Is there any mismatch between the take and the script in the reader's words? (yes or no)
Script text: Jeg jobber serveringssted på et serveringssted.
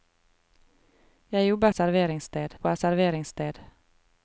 no